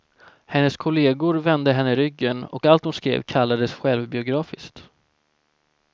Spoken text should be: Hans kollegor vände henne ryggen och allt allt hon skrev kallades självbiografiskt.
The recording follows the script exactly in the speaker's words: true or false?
false